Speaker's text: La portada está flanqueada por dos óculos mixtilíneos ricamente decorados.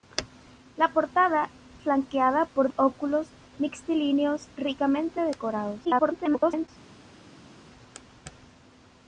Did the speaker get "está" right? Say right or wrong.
wrong